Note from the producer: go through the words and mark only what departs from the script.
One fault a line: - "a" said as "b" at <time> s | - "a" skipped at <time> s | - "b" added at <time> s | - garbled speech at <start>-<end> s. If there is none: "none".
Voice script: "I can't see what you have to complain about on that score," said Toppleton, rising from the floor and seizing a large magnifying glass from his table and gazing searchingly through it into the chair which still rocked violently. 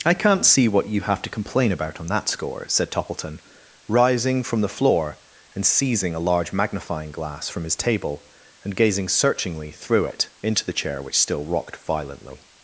none